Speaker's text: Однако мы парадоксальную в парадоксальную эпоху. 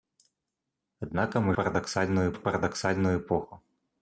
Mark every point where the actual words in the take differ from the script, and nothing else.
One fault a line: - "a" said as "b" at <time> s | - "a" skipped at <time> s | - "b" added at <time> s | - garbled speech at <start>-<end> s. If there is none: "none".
none